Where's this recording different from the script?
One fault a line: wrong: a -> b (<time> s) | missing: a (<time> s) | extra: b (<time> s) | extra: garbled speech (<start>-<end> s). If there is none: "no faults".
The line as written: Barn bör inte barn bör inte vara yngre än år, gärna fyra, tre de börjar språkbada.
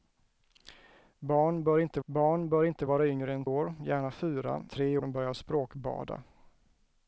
no faults